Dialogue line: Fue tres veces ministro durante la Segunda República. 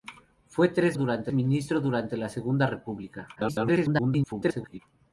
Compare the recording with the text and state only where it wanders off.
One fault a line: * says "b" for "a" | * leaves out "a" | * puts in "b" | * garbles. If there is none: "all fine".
* says "durante" for "veces"
* garbles